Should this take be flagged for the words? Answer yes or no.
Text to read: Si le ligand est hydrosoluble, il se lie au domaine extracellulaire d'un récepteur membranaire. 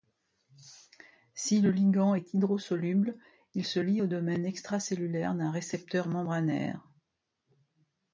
no